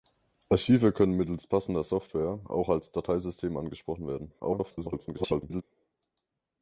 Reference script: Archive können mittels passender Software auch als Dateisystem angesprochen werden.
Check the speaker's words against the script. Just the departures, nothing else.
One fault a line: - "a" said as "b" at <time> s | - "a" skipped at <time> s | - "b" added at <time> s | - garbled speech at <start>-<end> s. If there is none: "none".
- garbled speech at 4.4-5.6 s